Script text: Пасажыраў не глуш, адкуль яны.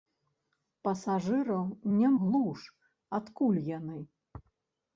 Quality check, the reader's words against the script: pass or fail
pass